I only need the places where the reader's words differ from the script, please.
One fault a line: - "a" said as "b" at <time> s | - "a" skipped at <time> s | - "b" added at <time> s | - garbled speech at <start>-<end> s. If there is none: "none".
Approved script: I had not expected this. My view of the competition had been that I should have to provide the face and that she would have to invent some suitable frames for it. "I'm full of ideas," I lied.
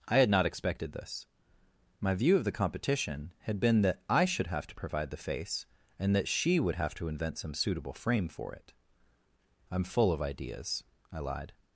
- "frames" said as "frame" at 7.9 s